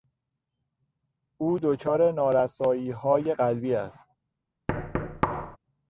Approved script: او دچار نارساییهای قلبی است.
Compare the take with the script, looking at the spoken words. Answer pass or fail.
pass